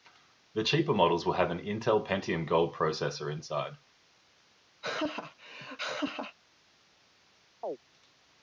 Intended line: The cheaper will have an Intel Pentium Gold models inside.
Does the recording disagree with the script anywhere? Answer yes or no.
yes